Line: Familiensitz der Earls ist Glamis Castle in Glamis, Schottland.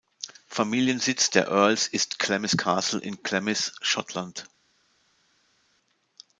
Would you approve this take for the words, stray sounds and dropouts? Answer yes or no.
yes